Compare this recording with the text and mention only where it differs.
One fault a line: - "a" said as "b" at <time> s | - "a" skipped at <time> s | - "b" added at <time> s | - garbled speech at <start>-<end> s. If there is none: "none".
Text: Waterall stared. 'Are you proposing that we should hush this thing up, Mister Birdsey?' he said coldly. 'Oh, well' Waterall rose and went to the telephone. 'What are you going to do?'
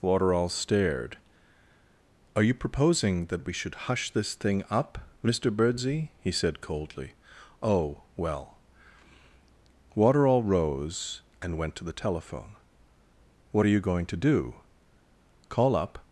- "Call up" added at 15.5 s